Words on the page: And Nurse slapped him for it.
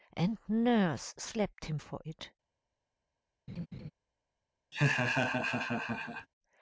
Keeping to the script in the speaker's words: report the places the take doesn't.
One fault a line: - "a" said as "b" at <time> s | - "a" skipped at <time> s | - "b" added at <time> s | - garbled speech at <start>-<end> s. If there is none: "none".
none